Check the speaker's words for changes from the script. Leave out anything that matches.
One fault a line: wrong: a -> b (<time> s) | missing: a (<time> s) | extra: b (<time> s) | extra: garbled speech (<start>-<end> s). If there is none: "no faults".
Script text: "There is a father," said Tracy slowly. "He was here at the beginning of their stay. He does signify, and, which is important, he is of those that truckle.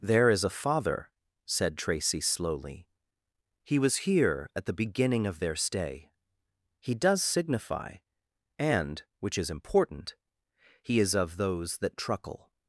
no faults